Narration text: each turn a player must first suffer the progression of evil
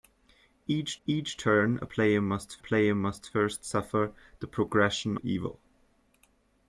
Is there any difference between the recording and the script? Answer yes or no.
yes